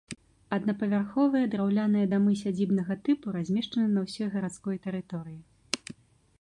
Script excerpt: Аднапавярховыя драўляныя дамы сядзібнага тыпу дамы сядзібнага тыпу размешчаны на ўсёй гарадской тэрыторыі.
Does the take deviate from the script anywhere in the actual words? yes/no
yes